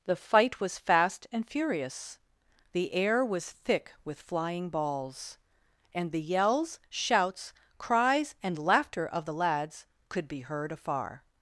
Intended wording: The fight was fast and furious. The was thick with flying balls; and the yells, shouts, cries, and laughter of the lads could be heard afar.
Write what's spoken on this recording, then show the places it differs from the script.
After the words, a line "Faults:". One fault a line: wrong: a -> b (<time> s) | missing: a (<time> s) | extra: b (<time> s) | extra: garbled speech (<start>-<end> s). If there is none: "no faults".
The fight was fast and furious. The air was thick with flying balls; and the yells, shouts, cries, and laughter of the lads could be heard afar.
Faults:
extra: air (2.9 s)